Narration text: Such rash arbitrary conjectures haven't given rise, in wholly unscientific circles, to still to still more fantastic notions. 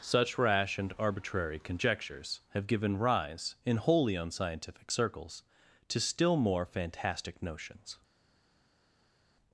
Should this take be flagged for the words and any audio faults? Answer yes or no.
yes